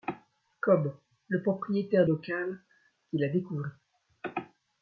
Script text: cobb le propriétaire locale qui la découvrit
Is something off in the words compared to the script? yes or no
no